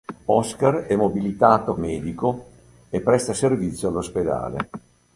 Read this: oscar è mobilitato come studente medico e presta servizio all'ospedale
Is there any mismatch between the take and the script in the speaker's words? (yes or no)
yes